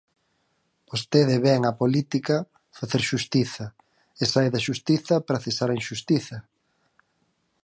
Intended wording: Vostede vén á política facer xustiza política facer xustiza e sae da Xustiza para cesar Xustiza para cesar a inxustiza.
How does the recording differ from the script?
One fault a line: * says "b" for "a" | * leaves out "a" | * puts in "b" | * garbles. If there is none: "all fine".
* leaves out "política facer xustiza"
* leaves out "Xustiza para cesar"